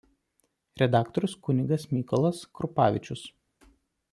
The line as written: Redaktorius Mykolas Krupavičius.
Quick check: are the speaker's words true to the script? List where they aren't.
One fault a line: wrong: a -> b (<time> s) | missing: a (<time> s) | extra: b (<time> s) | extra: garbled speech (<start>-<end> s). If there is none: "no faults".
extra: kunigas (1.5 s)